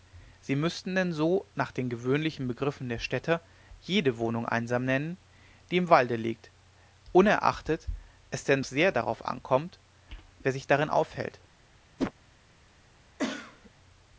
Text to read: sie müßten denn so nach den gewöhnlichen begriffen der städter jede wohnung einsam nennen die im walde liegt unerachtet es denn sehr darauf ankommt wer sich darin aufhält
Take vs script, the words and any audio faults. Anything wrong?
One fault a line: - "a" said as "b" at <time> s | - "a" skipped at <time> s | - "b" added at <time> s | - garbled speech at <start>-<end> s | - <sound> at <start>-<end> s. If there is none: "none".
- whoosh at 12.0-12.1 s
- cough at 13.2-13.7 s